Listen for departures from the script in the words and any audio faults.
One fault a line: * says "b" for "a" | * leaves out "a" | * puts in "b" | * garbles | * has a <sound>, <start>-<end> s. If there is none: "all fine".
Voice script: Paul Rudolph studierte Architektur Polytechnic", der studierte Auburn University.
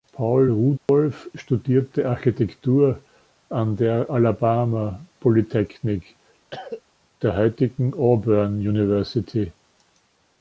* has a dropout, 0.8-0.9 s
* puts in "an der Alabama"
* has a cough, 6.5-6.8 s
* says "heutigen" for "studierte"